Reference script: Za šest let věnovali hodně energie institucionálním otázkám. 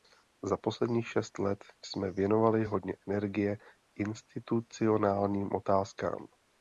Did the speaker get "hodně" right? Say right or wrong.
right